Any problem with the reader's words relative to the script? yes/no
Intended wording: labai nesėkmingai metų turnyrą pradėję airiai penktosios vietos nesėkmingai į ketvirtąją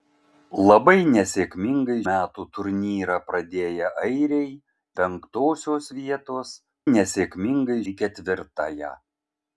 no